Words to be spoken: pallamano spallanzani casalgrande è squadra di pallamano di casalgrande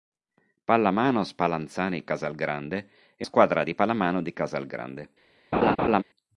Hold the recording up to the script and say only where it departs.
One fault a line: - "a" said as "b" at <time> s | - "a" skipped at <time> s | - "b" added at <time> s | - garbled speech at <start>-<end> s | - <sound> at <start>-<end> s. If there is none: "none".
- laugh at 5.5-6.0 s